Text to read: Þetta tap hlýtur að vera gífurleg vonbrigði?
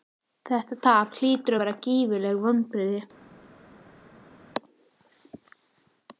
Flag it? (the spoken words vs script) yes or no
no